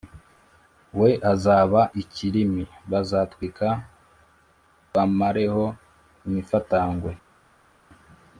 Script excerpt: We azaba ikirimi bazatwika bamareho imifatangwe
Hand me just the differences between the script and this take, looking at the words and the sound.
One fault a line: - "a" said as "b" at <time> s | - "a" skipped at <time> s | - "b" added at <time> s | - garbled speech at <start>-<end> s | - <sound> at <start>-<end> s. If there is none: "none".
none